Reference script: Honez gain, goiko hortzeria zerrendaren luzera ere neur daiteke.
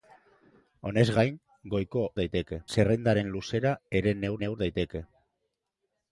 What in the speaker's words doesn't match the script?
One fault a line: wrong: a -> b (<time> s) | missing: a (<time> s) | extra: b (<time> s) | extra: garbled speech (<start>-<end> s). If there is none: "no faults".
wrong: hortzeria -> daiteke (2.2 s)
extra: neur (4.4 s)